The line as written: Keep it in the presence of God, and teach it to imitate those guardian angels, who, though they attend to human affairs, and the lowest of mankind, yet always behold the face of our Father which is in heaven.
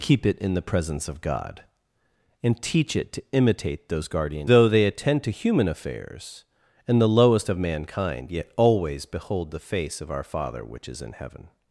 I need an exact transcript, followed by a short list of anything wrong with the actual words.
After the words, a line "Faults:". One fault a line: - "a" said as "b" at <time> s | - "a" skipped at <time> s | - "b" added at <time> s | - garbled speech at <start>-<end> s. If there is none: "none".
Keep it in the presence of God, and teach it to imitate those guardian though they attend to human affairs, and the lowest of mankind, yet always behold the face of our Father which is in heaven.
Faults:
- "angels who" skipped at 4.5 s